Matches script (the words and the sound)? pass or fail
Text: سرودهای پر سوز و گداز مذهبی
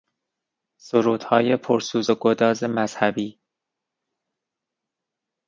pass